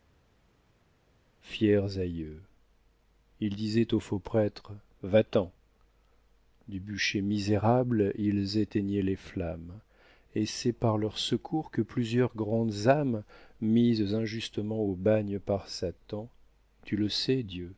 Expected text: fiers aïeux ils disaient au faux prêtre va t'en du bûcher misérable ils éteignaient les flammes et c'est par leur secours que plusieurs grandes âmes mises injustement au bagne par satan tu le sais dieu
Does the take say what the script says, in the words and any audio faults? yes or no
yes